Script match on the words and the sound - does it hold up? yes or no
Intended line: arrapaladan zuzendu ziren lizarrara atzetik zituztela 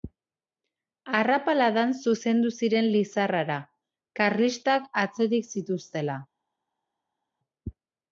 no